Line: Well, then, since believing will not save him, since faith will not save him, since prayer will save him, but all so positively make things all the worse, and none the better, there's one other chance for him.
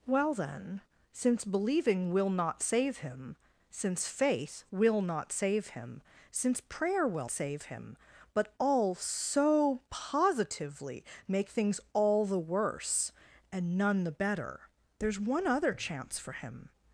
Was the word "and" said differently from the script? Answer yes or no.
no